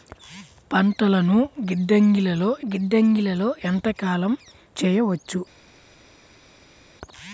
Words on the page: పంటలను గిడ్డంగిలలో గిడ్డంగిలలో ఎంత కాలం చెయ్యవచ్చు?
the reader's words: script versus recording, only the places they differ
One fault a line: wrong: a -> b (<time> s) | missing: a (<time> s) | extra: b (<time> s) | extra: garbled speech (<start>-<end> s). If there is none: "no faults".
no faults